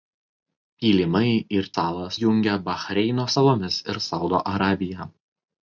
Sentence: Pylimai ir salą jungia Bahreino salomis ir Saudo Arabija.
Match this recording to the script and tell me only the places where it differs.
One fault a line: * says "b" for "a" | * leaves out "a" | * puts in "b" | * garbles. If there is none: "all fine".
all fine